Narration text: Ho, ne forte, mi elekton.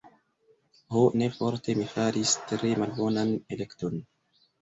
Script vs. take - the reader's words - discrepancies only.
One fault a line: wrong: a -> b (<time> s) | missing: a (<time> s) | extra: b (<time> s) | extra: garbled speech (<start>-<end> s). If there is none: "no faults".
extra: faris tre malbonan (1.9 s)